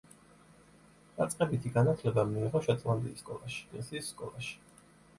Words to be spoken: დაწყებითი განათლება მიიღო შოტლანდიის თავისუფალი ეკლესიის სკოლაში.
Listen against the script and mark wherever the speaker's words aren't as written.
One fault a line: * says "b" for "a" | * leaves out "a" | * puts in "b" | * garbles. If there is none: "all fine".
* says "სკოლაში" for "თავისუფალი"